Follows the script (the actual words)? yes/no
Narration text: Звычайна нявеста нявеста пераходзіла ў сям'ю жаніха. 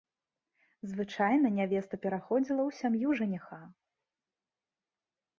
no